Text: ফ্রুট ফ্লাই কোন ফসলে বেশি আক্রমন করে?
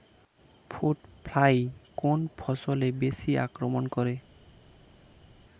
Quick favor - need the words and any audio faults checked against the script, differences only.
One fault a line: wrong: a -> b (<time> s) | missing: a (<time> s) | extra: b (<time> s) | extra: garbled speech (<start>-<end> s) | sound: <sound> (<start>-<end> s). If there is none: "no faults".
no faults